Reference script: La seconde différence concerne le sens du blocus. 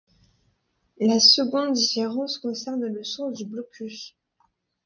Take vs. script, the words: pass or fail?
pass